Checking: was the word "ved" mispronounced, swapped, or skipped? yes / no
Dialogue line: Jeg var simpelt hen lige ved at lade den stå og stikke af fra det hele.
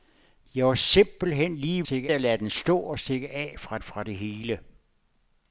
yes